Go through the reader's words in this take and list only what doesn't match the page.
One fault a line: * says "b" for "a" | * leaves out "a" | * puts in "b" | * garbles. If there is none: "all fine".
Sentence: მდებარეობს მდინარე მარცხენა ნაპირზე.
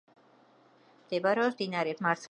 all fine